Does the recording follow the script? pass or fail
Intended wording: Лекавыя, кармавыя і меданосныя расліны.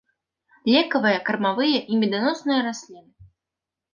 pass